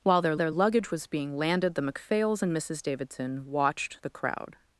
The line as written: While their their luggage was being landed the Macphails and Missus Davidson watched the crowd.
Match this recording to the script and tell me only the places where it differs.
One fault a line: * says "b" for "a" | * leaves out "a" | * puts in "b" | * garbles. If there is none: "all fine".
all fine